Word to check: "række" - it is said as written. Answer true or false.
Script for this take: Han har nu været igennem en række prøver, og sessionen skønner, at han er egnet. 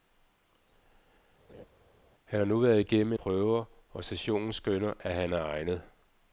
false